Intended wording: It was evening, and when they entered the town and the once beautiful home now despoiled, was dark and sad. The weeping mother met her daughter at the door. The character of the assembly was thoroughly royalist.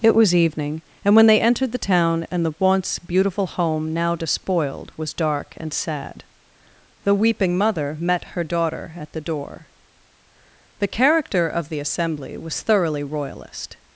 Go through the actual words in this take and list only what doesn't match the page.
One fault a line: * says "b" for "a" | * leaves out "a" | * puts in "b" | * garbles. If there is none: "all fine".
all fine